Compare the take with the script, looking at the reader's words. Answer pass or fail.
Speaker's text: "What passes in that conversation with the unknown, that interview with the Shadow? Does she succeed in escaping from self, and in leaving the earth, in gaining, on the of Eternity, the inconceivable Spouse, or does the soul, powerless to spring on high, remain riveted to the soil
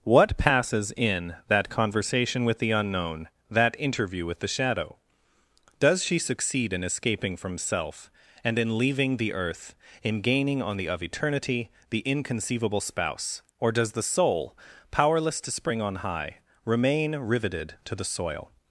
pass